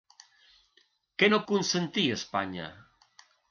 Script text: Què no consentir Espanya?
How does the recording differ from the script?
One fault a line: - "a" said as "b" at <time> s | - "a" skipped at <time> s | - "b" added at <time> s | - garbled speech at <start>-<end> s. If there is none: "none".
none